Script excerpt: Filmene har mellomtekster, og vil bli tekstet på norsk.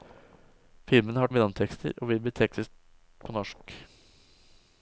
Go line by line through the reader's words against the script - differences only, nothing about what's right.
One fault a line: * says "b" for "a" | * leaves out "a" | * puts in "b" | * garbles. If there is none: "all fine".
all fine